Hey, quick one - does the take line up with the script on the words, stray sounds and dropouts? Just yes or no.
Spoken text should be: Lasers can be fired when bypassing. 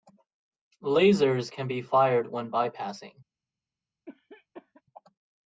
no